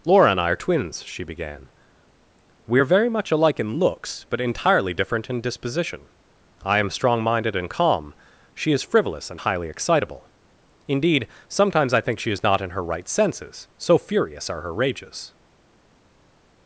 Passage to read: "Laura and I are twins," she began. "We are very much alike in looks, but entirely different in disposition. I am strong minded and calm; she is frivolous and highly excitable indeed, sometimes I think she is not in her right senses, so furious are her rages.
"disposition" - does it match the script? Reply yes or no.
yes